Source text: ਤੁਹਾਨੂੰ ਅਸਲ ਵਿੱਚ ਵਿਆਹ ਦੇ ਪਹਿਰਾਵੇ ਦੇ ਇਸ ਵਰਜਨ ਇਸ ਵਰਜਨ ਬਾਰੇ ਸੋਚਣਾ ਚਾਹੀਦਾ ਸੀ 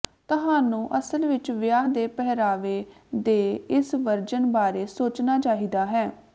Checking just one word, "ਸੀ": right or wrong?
wrong